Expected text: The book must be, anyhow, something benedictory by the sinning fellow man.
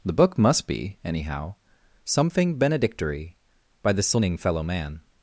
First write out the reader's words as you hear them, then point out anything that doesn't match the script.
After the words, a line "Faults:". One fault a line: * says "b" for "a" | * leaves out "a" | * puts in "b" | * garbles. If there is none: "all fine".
The book must be, anyhow, something benedictory by the sinning fellow man.
Faults:
all fine